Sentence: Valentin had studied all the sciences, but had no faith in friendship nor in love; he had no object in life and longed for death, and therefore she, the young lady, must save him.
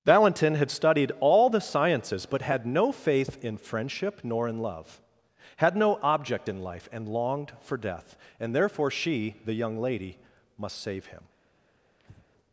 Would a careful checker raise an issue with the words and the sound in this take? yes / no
yes